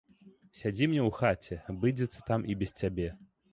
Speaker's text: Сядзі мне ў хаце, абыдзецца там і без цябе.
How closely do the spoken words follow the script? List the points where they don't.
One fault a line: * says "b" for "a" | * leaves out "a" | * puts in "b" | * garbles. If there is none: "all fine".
all fine